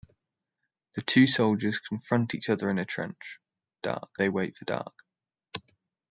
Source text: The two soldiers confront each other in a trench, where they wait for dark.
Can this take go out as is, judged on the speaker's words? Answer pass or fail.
fail